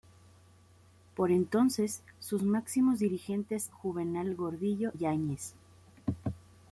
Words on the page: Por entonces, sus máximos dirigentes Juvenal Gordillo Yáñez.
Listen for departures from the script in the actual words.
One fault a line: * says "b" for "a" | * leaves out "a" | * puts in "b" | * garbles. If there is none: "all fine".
all fine